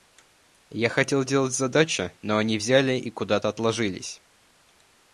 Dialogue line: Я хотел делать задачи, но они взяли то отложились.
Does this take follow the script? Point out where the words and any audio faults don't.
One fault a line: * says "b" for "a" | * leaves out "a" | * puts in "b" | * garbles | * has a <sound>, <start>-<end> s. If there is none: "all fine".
* puts in "и куда"